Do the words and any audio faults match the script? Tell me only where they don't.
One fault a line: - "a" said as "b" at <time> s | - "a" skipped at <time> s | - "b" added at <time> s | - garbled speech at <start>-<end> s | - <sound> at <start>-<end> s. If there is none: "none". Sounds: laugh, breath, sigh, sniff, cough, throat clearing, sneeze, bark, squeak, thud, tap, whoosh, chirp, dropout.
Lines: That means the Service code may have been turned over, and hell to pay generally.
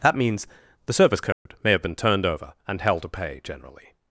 - dropout at 1.3-1.5 s